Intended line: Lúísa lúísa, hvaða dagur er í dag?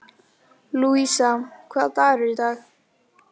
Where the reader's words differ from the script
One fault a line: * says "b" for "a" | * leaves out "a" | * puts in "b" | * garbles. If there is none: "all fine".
* leaves out "lúísa"